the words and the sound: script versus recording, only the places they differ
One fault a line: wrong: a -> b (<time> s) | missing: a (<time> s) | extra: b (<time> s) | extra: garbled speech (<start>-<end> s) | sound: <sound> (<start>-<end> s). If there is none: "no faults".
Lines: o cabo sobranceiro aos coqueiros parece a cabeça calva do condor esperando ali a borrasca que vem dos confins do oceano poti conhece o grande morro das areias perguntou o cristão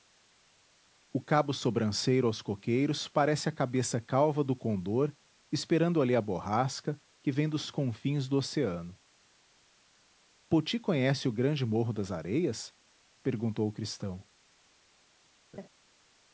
sound: laugh (15.5-15.7 s)